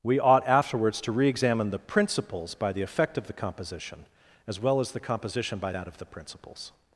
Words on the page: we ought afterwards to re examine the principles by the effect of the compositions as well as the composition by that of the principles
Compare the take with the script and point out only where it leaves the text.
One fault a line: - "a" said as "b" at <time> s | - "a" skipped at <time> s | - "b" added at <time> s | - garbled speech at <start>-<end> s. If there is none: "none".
- "compositions" said as "composition" at 3.3 s